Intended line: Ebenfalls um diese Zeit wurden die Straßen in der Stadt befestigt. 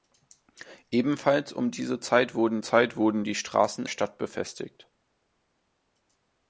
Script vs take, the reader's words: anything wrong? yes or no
yes